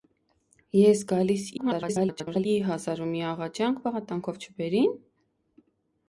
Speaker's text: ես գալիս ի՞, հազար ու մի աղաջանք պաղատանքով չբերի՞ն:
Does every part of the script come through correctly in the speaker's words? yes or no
no